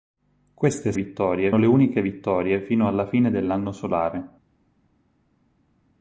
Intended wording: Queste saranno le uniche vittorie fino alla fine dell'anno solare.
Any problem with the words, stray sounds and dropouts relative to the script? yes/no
yes